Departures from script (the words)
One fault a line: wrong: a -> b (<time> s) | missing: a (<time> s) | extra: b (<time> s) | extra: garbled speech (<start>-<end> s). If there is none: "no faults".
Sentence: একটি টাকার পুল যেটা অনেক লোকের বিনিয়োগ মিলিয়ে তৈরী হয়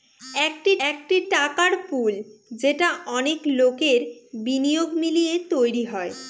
extra: একটি (0.9 s)